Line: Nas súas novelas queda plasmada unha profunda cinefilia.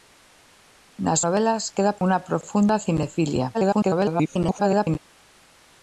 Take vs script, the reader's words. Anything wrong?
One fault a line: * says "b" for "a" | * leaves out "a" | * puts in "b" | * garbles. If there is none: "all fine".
* leaves out "súas"
* leaves out "plasmada"
* garbles